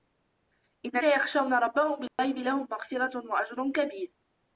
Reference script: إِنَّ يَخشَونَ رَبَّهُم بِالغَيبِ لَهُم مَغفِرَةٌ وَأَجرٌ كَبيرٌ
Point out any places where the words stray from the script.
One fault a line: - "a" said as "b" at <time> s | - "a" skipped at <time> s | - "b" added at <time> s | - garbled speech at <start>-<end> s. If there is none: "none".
none